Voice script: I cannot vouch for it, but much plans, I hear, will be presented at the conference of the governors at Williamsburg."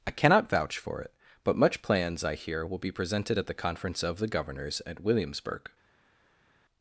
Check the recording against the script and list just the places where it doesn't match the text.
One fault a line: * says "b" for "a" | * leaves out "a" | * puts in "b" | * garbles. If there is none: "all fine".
all fine